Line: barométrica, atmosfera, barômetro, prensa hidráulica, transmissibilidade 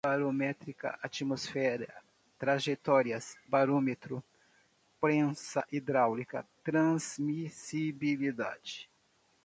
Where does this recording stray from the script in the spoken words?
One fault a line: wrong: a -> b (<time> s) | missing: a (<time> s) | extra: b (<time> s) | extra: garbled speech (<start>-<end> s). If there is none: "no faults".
extra: trajetórias (2.4 s)